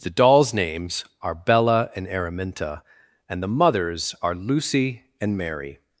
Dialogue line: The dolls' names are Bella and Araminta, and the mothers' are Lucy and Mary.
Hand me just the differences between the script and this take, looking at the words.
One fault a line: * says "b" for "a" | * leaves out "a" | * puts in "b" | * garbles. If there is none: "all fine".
all fine